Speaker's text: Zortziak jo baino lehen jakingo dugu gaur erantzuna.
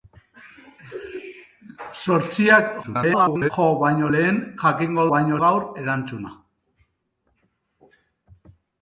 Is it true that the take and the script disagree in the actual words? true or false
true